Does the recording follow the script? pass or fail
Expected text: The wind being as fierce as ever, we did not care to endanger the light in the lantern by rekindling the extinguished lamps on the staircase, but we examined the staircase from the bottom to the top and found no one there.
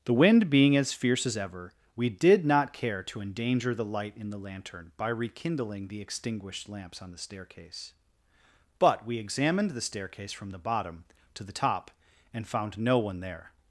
pass